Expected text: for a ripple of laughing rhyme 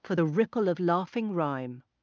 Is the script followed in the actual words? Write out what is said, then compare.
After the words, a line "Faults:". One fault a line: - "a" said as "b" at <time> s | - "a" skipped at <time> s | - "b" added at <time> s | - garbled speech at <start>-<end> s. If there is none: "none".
for the ripple of laughing rhyme
Faults:
- "a" said as "the" at 0.1 s